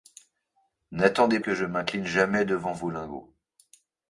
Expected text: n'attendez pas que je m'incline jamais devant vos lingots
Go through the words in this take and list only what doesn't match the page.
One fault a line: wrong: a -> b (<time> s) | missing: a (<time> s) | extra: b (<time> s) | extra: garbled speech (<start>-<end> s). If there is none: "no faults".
missing: pas (1.4 s)